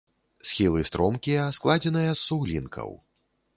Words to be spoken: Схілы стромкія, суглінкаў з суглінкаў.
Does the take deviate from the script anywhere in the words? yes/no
yes